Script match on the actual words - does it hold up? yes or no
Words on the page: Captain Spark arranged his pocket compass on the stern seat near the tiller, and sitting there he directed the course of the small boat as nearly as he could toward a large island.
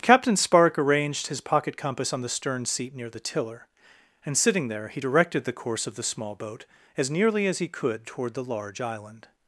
no